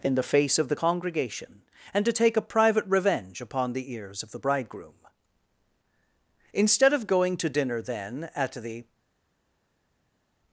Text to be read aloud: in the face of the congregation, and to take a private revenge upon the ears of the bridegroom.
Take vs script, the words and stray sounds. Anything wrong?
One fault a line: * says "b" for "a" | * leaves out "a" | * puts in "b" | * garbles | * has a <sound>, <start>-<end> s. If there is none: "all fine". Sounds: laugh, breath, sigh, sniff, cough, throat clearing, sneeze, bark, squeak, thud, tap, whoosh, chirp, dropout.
* puts in "Instead of going to dinner then at the"